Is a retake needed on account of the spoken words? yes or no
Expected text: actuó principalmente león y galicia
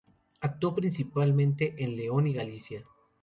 yes